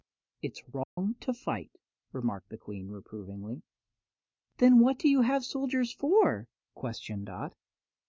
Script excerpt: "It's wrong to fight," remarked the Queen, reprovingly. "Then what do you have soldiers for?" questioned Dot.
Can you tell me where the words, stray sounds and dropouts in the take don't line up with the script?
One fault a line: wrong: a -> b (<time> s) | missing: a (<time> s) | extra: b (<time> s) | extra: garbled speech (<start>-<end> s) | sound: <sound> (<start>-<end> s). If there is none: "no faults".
sound: dropout (0.8-1.0 s)